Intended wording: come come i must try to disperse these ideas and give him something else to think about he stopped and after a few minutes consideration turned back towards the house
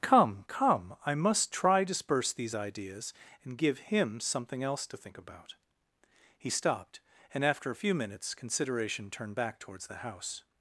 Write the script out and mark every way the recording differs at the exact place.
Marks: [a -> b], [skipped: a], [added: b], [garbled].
come come i must try [skipped: to] disperse these ideas and give him something else to think about he stopped and after a few minutes consideration turned back towards the house